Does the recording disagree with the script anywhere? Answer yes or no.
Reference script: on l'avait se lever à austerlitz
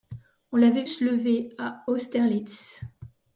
no